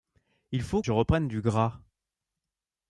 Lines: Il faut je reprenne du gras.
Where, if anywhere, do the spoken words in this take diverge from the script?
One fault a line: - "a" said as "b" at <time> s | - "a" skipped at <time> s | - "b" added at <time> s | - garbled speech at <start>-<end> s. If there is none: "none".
none